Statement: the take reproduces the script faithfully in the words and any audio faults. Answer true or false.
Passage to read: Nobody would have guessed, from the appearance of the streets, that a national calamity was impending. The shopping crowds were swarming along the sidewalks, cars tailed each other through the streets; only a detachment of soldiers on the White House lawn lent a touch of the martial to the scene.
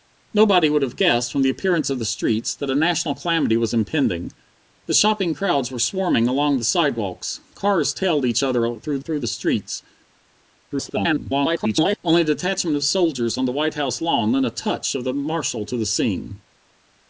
false